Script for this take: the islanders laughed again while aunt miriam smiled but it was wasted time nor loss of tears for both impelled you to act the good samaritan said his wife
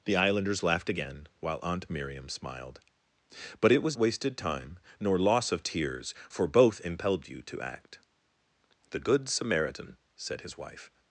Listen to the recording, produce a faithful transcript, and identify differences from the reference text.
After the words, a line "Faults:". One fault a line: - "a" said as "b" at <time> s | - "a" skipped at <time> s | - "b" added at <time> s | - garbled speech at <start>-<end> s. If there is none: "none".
the islanders laughed again while aunt miriam smiled but it was wasted time nor loss of tears for both impelled you to act the good samaritan said his wife
Faults:
none